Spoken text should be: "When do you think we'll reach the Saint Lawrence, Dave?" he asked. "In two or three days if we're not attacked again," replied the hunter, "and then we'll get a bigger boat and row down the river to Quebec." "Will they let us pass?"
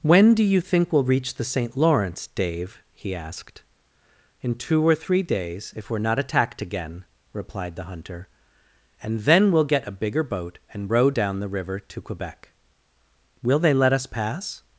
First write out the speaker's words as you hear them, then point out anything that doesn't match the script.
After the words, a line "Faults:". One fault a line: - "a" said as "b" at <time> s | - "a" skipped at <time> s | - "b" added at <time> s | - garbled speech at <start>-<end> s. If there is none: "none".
"When do you think we'll reach the Saint Lawrence, Dave?" he asked. "In two or three days if we're not attacked again," replied the hunter, "and then we'll get a bigger boat and row down the river to Quebec." "Will they let us pass?"
Faults:
none